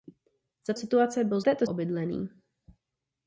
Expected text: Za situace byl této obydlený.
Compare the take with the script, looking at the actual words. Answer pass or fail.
pass